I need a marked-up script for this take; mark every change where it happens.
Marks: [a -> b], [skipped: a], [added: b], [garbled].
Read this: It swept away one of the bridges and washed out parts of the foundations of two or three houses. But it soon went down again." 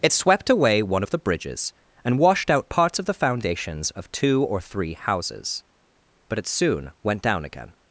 It swept away one of the bridges and washed out parts of the foundations of two or three houses. But it soon went down again."